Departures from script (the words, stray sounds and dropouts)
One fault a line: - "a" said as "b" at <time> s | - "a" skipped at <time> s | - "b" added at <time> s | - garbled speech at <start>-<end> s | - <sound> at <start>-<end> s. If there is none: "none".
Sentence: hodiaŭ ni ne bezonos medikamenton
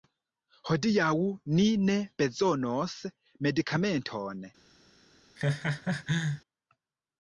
- laugh at 5.4-6.4 s